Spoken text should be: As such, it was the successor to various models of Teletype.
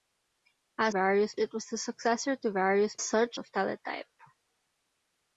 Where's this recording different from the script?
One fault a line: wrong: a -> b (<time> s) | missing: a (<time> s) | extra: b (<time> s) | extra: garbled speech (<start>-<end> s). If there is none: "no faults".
wrong: such -> various (0.9 s)
wrong: models -> such (3.0 s)